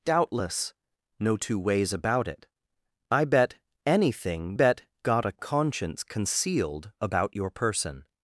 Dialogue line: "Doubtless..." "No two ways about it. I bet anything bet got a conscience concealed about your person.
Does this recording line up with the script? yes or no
yes